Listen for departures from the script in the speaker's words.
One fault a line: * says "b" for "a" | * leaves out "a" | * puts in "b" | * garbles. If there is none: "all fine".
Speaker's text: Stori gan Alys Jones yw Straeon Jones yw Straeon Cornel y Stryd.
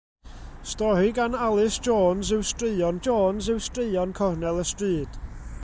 all fine